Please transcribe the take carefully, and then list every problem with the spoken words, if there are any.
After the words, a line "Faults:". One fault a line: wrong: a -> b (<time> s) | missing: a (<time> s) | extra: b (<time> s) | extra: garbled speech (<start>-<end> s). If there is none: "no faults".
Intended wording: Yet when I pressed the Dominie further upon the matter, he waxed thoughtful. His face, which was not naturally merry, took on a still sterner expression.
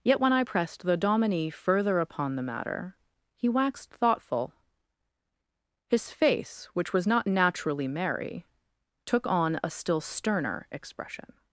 Yet when I pressed the Dominie further upon the matter, he waxed thoughtful. His face, which was not naturally merry, took on a still sterner expression.
Faults:
no faults